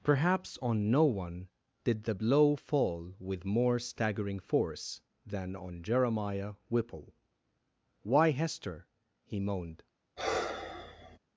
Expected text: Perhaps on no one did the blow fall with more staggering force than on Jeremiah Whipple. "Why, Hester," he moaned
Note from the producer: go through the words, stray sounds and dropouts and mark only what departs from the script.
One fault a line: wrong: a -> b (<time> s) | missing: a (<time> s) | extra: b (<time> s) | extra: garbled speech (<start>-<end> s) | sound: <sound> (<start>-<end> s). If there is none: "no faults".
sound: sigh (10.2-11.2 s)